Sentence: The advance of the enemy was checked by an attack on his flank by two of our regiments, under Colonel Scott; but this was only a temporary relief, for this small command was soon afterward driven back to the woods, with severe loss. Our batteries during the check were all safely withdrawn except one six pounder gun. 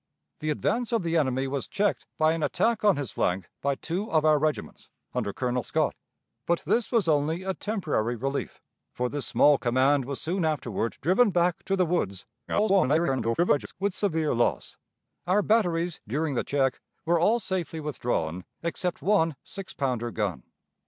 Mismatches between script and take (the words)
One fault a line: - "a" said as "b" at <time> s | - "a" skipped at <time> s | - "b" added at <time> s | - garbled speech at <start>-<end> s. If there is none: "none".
- garbled speech at 12.5-13.7 s